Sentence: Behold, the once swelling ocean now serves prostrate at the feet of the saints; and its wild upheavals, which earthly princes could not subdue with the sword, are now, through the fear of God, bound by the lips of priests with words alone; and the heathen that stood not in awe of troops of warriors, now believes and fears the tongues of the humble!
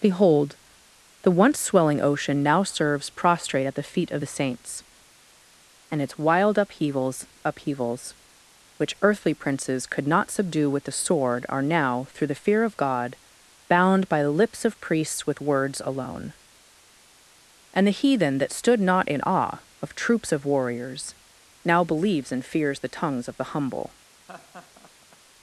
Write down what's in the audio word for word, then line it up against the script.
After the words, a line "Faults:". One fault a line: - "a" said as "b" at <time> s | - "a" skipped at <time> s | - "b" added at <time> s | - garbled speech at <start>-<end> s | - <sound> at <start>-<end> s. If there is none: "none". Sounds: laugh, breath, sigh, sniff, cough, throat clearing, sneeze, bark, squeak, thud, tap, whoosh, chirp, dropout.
Behold, the once swelling ocean now serves prostrate at the feet of the saints; and its wild upheavals upheavals, which earthly princes could not subdue with the sword, are now, through the fear of God, bound by the lips of priests with words alone; and the heathen that stood not in awe of troops of warriors, now believes and fears the tongues of the humble!
Faults:
- "upheavals" added at 7.4 s
- laugh at 24.3-25.2 s